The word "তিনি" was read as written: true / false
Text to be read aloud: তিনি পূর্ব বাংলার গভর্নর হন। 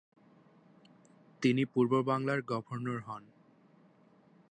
true